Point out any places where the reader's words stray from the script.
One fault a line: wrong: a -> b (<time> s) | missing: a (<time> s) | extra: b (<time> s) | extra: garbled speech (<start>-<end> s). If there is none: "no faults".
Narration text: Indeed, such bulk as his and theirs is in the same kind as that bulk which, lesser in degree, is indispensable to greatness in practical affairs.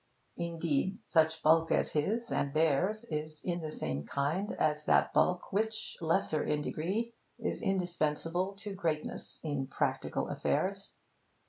no faults